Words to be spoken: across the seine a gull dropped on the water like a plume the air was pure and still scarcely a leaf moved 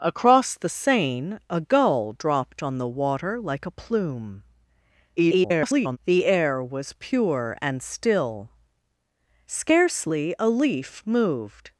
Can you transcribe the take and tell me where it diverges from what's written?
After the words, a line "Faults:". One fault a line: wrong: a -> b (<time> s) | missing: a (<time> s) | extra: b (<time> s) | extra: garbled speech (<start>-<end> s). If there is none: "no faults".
across the seine a gull dropped on the water like a plume [garbled] the air was pure and still scarcely a leaf moved
Faults:
extra: garbled speech (5.2-6.0 s)